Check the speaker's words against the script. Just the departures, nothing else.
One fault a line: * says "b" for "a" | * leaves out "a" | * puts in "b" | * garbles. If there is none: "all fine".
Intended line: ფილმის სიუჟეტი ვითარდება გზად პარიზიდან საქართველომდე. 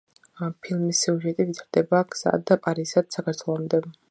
all fine